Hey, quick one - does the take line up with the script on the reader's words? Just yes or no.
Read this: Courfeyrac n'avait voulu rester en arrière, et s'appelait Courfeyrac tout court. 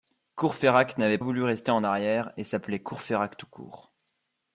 yes